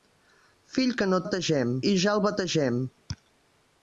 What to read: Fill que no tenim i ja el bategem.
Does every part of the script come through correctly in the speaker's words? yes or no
no